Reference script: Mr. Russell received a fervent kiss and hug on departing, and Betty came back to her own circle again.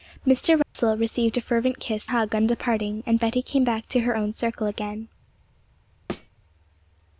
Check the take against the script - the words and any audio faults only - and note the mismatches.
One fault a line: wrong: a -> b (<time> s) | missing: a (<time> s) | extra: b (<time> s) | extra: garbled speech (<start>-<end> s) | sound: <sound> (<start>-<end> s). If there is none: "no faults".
sound: dropout (0.6-0.8 s)
missing: and (2.1 s)
sound: thud (6.1-6.3 s)